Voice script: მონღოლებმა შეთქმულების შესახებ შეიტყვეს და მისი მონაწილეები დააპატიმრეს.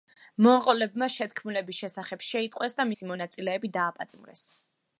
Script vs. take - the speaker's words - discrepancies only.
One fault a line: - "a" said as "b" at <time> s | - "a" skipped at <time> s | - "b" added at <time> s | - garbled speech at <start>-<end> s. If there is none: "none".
none